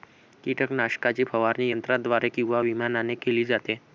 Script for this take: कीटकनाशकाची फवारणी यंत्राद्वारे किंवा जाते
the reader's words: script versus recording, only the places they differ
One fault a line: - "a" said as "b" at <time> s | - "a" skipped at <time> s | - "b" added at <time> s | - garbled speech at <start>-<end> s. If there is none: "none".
- "विमानाने केली" added at 2.6 s